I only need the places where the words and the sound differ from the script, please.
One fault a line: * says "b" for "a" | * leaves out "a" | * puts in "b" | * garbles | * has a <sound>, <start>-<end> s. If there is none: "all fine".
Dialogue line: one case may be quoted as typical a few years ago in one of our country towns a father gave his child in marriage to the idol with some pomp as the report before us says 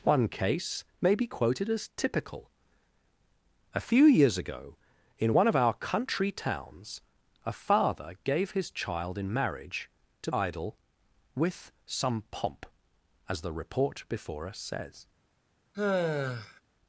* leaves out "the"
* has a sigh, 15.7-16.6 s